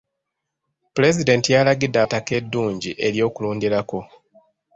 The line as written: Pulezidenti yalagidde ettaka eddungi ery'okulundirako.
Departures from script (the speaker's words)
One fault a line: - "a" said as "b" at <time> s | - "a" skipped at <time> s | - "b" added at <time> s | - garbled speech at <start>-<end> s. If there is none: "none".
none